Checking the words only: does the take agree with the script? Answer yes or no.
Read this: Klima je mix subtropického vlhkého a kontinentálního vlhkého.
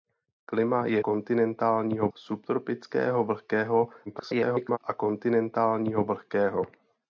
no